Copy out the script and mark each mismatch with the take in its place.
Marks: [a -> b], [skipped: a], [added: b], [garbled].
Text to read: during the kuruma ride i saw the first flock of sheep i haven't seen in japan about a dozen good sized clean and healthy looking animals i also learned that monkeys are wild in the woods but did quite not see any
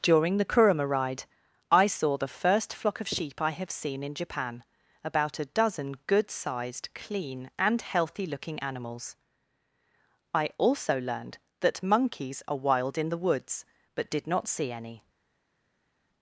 during the kuruma ride i saw the first flock of sheep i [haven't -> have] seen in japan about a dozen good sized clean and healthy looking animals i also learned that monkeys are wild in the woods but did [skipped: quite] not see any